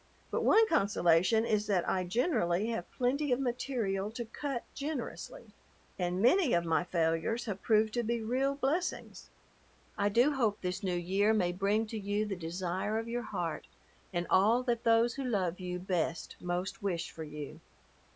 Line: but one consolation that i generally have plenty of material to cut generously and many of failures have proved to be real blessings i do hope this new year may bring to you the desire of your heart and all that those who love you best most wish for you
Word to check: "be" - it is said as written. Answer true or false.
true